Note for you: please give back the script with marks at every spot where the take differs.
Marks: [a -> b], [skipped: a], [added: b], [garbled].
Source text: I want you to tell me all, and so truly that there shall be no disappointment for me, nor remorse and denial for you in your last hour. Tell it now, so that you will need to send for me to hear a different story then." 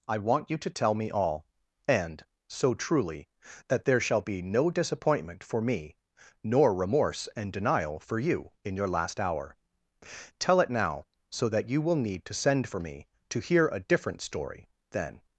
I want you to tell me all, and so truly that there shall be no disappointment for me, nor remorse and denial for you in your last hour. Tell it now, so that you will need to send for me to hear a different story then."